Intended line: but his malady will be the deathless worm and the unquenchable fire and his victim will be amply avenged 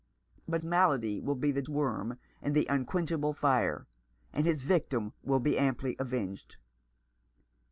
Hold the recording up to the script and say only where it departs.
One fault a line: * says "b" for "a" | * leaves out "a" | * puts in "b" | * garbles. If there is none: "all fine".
* leaves out "his"
* leaves out "deathless"